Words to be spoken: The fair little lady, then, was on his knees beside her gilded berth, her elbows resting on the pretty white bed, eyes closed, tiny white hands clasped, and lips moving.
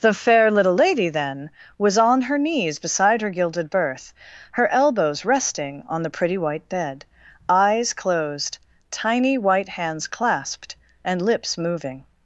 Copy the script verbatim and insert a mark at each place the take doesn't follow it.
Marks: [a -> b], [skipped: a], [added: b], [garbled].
The fair little lady, then, was on [his -> her] knees beside her gilded berth, her elbows resting on the pretty white bed, eyes closed, tiny white hands clasped, and lips moving.